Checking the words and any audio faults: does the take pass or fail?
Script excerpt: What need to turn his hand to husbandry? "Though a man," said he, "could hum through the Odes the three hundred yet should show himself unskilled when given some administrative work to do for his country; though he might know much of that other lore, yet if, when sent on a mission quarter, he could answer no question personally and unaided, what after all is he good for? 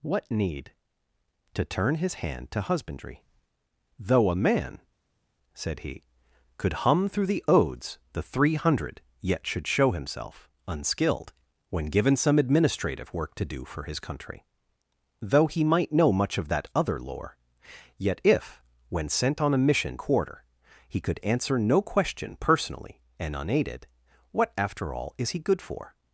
pass